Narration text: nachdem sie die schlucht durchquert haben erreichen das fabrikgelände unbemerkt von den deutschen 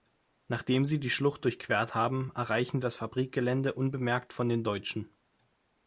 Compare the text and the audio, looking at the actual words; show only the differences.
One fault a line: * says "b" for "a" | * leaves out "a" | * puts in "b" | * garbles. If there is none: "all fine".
all fine